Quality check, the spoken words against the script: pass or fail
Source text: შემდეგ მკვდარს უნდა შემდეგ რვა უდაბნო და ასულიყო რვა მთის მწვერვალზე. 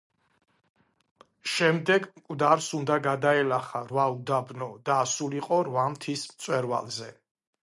fail